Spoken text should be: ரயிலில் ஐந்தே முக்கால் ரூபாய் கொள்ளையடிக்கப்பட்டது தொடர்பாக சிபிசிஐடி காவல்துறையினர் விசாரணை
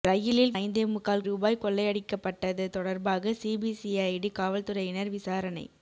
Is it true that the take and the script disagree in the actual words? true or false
false